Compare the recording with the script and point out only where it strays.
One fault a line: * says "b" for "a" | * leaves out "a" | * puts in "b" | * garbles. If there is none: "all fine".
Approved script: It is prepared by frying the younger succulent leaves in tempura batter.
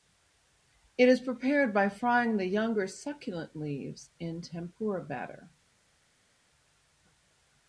all fine